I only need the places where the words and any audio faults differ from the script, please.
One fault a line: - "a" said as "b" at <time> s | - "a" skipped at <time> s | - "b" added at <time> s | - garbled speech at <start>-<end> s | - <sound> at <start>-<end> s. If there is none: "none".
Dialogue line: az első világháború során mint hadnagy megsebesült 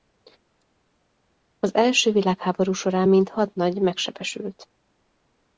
none